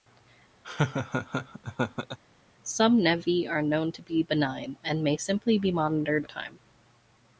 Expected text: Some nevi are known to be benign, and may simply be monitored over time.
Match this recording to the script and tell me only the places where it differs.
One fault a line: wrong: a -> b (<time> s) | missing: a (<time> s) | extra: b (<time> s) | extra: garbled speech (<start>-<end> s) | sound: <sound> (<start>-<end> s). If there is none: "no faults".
sound: laugh (0.6-2.2 s)
missing: over (6.3 s)